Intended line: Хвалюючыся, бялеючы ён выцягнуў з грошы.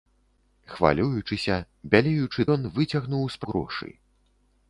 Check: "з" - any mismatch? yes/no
no